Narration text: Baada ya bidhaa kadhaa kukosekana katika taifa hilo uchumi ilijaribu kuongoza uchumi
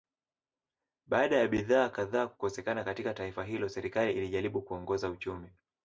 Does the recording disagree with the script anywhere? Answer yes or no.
yes